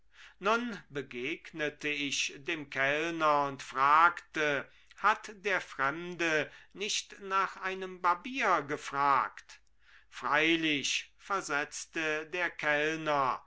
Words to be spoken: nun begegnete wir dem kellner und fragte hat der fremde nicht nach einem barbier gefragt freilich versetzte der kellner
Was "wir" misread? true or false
true